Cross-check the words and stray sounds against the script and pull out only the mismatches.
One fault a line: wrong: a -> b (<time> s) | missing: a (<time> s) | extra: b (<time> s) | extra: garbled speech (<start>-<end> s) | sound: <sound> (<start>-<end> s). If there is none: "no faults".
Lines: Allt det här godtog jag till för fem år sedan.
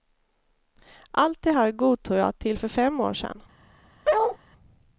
sound: bark (4.0-4.4 s)